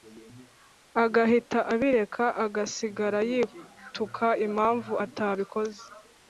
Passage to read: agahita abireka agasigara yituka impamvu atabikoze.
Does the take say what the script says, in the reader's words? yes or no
yes